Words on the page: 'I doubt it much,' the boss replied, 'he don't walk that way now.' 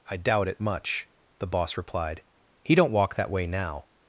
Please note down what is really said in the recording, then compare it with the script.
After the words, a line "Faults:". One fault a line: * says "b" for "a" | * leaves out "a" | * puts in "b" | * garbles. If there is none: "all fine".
'I doubt it much,' the boss replied, 'he don't walk that way now.'
Faults:
all fine